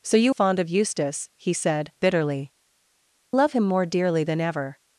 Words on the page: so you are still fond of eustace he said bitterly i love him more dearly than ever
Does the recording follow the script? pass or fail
fail